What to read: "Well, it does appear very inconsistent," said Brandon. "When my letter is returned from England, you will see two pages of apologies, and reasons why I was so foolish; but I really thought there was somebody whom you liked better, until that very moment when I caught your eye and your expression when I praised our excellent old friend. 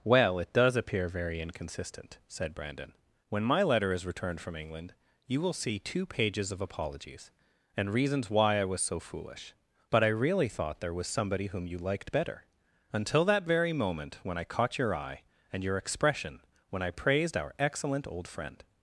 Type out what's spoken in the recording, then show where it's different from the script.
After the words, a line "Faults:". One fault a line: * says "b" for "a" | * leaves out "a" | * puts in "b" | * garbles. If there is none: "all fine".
"Well, it does appear very inconsistent," said Brandon. "When my letter is returned from England, you will see two pages of apologies, and reasons why I was so foolish; but I really thought there was somebody whom you liked better, until that very moment when I caught your eye and your expression when I praised our excellent old friend.
Faults:
all fine